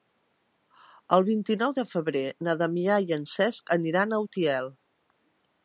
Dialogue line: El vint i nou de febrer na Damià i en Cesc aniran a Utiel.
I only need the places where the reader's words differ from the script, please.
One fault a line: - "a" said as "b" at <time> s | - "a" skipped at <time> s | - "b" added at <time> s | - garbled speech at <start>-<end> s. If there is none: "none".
none